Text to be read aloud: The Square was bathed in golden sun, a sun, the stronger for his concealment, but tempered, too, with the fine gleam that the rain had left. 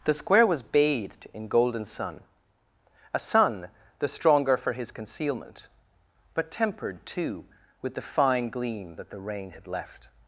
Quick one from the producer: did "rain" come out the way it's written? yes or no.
yes